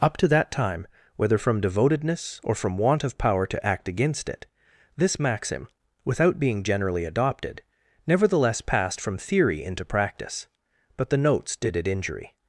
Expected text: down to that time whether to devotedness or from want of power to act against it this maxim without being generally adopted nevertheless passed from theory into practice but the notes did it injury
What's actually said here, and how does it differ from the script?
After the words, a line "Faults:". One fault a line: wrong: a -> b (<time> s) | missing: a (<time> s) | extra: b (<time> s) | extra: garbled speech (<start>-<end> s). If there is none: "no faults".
up to that time whether from devotedness or from want of power to act against it this maxim without being generally adopted nevertheless passed from theory into practice but the notes did it injury
Faults:
wrong: down -> up (0.0 s)
wrong: to -> from (1.4 s)